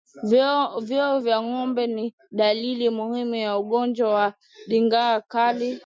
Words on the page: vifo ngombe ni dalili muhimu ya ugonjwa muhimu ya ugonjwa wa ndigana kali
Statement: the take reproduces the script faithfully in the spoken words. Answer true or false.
false